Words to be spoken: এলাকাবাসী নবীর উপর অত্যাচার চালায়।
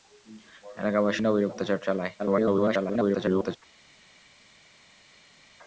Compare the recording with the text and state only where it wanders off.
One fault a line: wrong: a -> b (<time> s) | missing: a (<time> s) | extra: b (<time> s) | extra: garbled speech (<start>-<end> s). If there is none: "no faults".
missing: উপর (1.5 s)
extra: garbled speech (2.2-3.6 s)